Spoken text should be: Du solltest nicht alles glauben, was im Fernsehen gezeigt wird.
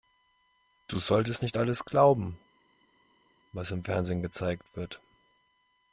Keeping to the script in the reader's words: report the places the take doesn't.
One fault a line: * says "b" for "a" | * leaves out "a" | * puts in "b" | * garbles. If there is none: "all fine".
all fine